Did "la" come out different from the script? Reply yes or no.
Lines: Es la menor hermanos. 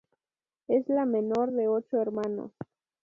no